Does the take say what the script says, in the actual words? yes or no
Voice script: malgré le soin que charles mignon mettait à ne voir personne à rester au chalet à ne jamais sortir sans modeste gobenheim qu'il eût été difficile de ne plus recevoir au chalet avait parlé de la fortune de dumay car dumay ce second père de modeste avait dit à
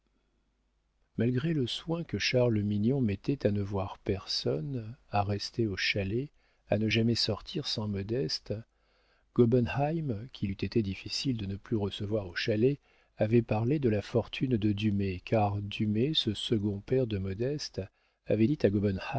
yes